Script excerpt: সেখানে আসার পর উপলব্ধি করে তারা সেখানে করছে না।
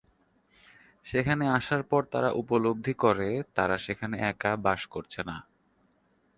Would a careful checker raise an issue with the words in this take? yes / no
yes